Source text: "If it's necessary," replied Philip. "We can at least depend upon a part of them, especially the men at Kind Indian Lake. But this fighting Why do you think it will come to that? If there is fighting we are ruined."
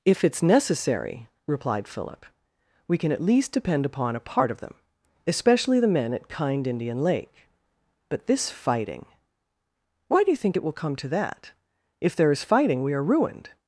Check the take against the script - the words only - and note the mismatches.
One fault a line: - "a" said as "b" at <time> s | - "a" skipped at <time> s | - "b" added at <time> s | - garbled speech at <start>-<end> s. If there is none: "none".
none